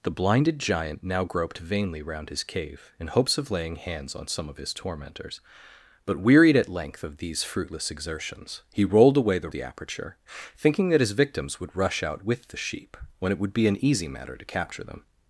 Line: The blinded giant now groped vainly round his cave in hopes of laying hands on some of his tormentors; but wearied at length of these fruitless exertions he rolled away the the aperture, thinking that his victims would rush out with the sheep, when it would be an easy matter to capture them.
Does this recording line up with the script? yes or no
yes